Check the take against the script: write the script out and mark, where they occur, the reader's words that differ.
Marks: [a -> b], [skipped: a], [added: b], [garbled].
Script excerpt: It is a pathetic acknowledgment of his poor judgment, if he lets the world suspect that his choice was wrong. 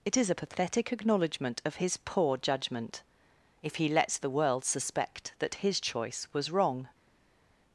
It is a pathetic acknowledgment of his poor judgment, if he lets the world suspect that his choice was wrong.